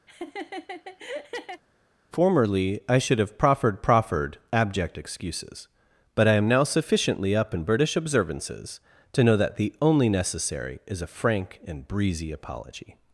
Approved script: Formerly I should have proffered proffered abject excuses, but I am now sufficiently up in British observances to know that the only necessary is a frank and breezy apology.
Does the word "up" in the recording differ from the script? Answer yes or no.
no